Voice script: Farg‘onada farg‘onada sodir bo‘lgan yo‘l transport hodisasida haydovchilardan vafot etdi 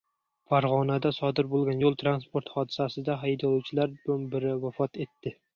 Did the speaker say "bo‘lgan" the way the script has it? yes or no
yes